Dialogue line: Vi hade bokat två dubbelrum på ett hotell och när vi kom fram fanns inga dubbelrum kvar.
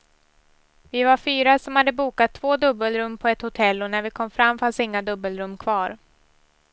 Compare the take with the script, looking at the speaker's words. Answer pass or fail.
fail